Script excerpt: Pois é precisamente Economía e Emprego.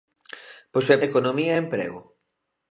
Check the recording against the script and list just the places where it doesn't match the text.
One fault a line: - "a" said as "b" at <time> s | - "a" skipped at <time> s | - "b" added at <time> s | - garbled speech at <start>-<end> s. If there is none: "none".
- "precisamente" skipped at 1.0 s